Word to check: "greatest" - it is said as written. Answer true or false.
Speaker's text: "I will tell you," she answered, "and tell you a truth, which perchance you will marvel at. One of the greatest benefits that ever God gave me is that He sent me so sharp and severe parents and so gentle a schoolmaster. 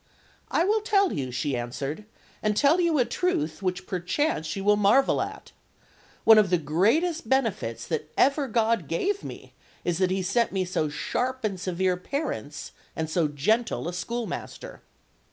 true